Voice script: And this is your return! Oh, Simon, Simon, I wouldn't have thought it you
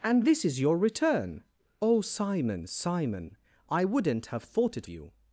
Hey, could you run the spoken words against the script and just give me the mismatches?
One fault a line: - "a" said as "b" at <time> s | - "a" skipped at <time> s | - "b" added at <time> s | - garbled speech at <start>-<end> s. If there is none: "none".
none